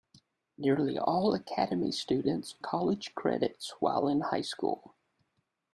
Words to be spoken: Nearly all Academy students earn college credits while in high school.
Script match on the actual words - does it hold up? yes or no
no